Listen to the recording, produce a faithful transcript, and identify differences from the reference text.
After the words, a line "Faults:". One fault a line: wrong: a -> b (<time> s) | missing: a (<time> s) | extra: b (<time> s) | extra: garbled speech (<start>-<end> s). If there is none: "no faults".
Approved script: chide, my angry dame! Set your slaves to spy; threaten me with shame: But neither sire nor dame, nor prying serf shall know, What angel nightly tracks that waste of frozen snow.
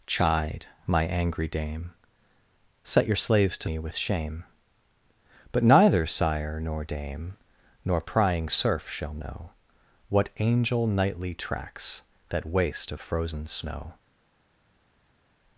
chide, my angry dame! Set your slaves to me with shame: But neither sire nor dame, nor prying serf shall know, What angel nightly tracks that waste of frozen snow.
Faults:
missing: spy threaten (3.7 s)